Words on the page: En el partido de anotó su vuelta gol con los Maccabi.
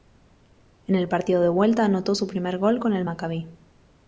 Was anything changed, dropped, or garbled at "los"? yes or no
yes